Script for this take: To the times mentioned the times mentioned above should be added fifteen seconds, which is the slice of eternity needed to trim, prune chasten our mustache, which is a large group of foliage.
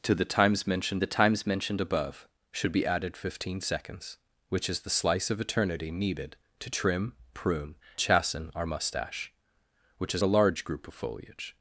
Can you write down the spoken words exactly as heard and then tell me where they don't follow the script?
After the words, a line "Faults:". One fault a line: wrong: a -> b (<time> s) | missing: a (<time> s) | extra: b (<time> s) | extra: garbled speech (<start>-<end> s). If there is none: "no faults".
To the times mentioned the times mentioned above should be added fifteen seconds, which is the slice of eternity needed to trim, prune chasten our mustache, which is a large group of foliage.
Faults:
no faults